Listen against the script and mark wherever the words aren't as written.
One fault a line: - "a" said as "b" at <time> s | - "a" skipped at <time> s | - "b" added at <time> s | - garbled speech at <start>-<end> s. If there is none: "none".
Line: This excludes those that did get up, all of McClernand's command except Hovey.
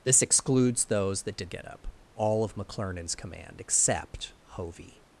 none